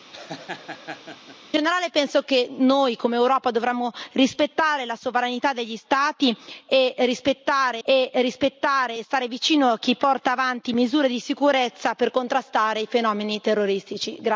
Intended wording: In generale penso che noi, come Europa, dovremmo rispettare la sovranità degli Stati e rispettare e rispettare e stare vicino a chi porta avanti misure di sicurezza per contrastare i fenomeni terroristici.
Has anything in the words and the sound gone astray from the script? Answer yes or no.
yes